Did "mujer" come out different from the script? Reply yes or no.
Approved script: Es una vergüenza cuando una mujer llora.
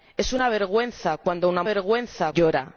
yes